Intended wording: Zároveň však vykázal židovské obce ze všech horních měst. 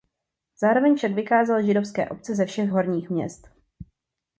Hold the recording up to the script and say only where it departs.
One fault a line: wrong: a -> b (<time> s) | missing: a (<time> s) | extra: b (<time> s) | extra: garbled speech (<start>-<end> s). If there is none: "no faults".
no faults